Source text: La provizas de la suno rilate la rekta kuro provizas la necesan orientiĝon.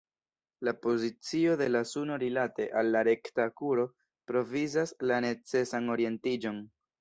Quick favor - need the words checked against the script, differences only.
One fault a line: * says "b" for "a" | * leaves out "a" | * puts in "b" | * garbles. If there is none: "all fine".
* says "pozicio" for "provizas"
* puts in "al"